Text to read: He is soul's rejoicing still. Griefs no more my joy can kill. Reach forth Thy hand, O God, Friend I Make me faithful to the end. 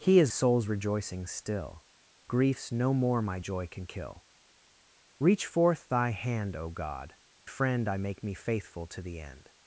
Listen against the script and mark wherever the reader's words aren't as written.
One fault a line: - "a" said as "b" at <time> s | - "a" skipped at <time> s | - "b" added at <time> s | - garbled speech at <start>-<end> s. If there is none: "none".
none